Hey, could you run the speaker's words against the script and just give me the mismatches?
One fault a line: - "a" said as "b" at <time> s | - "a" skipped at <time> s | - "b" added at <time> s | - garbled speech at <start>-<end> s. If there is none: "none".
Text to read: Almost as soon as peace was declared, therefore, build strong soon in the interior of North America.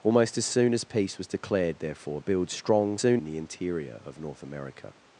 none